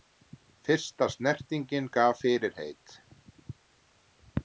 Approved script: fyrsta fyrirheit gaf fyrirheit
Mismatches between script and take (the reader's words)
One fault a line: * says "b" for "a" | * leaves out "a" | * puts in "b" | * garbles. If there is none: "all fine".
* says "snertingin" for "fyrirheit"